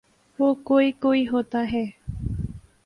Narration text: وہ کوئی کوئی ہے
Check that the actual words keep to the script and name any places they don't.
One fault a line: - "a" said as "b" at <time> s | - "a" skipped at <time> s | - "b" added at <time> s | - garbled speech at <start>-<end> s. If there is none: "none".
- "ہوتا" added at 1.3 s